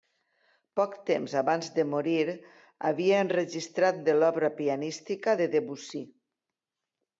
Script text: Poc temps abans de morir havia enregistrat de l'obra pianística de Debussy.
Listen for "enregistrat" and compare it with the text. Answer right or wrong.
right